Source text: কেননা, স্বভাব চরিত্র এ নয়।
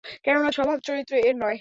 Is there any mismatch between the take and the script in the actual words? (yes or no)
no